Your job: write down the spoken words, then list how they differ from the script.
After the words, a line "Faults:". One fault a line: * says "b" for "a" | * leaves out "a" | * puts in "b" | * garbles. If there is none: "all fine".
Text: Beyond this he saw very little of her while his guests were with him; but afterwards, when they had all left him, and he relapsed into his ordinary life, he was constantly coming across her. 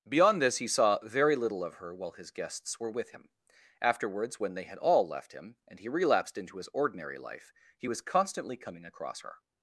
Beyond this he saw very little of her while his guests were with him; afterwards, when they had all left him, and he relapsed into his ordinary life, he was constantly coming across her.
Faults:
* leaves out "but"